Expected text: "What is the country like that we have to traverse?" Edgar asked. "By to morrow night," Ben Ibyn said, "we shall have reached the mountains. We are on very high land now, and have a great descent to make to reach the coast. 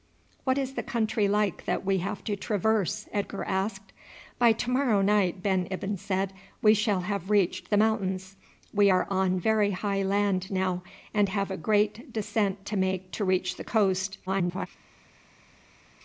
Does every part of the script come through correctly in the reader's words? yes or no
no